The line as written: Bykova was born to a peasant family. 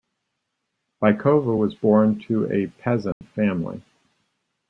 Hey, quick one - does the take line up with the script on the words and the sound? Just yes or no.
no